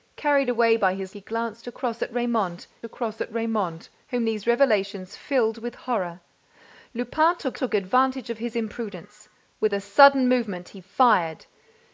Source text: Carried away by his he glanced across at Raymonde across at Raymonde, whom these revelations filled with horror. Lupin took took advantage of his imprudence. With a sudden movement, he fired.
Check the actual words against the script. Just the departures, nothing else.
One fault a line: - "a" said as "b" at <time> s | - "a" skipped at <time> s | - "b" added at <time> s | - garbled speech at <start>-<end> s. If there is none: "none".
none